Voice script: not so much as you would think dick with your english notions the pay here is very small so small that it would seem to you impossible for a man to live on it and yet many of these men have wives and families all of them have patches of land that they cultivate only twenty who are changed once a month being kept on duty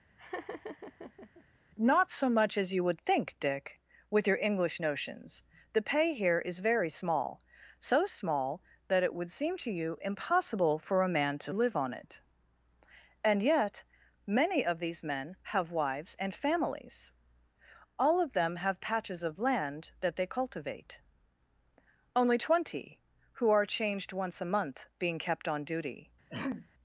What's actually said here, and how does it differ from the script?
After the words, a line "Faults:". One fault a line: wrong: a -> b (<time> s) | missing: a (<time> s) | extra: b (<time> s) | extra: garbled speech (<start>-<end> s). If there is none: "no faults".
not so much as you would think dick with your english notions the pay here is very small so small that it would seem to you impossible for a man to live on it and yet many of these men have wives and families all of them have patches of land that they cultivate only twenty who are changed once a month being kept on duty
Faults:
no faults